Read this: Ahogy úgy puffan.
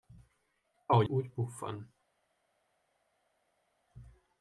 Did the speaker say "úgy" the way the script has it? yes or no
yes